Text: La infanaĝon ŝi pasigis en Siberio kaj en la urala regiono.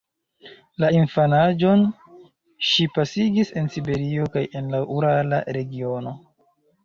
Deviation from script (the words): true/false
false